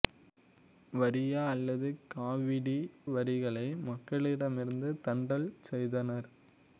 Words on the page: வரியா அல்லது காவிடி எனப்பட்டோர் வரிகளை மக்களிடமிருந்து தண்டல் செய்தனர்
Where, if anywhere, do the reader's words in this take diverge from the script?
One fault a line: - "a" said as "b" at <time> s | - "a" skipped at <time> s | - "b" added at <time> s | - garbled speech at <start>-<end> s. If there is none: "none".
- "எனப்பட்டோர்" skipped at 2.8 s